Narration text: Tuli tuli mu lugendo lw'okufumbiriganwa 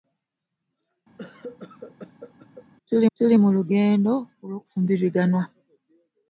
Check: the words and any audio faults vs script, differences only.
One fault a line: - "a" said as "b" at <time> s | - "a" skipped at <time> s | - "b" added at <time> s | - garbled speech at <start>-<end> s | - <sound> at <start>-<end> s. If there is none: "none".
- cough at 1.2-2.7 s